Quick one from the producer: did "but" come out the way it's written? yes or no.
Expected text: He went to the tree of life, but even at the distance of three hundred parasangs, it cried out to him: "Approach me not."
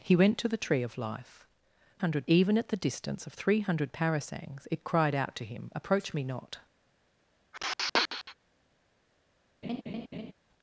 no